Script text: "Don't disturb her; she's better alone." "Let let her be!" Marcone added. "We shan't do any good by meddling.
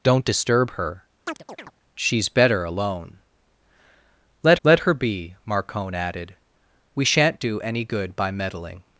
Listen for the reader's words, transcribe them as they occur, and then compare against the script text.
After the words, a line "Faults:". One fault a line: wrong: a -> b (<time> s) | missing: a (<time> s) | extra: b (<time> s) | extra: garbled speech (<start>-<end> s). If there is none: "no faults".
"Don't disturb her; she's better alone." "Let let her be!" Marcone added. "We shan't do any good by meddling.
Faults:
no faults